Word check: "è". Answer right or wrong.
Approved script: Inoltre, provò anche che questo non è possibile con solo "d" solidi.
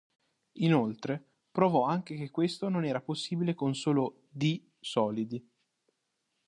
wrong